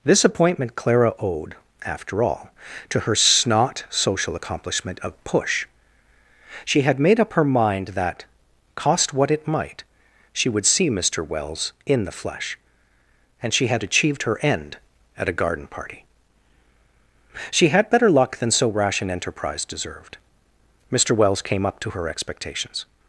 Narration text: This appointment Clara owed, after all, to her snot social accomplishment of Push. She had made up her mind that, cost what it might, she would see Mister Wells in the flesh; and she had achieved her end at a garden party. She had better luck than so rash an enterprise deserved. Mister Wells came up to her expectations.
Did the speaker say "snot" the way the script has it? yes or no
yes